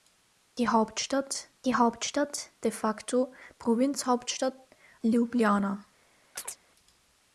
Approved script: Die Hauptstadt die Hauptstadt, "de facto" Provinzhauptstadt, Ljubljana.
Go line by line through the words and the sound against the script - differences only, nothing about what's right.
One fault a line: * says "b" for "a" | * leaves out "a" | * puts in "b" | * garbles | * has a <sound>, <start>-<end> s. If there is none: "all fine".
* has a chirp, 6.4-6.6 s